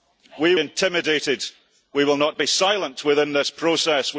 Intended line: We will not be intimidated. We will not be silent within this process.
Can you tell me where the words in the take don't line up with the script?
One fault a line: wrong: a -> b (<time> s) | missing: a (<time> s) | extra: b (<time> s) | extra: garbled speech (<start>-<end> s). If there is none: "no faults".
missing: will not be (0.6 s)